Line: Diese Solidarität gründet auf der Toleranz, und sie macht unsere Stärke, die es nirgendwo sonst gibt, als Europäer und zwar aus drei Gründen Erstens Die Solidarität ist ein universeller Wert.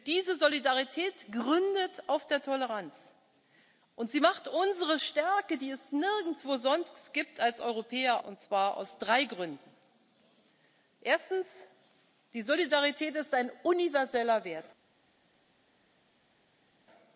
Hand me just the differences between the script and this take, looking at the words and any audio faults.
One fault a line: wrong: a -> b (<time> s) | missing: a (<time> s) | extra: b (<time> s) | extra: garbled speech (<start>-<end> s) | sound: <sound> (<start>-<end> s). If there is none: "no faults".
no faults